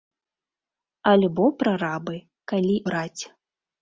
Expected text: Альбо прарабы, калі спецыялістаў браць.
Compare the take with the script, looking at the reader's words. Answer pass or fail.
fail